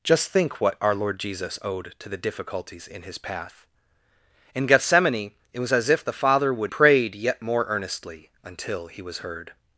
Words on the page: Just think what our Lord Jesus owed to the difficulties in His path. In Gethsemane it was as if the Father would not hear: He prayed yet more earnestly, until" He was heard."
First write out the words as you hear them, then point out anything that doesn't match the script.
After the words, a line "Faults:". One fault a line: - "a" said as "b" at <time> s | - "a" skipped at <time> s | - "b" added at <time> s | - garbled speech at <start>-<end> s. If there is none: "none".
Just think what our Lord Jesus owed to the difficulties in His path. In Gethsemane it was as if the Father would prayed yet more earnestly, until" He was heard."
Faults:
- "not hear He" skipped at 6.7 s